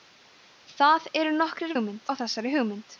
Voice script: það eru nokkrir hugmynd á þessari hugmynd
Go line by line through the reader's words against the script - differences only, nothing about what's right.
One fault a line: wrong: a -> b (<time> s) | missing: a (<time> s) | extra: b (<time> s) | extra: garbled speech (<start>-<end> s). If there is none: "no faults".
no faults